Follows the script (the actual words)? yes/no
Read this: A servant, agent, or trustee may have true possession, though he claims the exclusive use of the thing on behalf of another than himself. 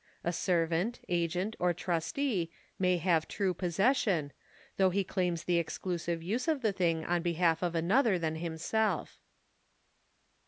yes